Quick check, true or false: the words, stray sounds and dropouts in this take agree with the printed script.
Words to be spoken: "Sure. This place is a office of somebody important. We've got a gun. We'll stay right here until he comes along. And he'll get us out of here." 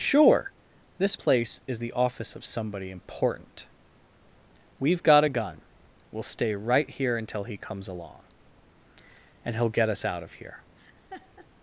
false